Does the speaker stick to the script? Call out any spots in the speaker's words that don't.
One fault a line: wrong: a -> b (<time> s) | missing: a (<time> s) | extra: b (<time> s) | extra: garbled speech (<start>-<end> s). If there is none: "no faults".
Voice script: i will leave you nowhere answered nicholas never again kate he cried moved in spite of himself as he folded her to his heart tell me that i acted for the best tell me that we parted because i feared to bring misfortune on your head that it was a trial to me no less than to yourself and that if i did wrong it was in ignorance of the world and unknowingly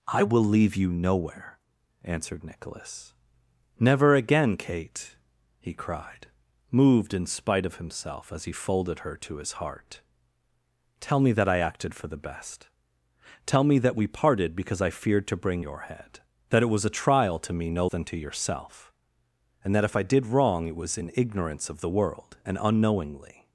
missing: misfortune on (15.7 s)
missing: less (17.9 s)